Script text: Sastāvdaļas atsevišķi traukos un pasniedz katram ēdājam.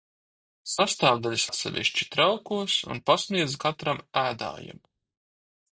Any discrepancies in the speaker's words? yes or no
no